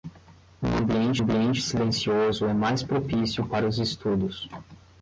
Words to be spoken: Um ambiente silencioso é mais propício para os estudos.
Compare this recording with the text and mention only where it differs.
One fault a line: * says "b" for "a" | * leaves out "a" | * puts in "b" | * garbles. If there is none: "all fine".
* puts in "ambiente"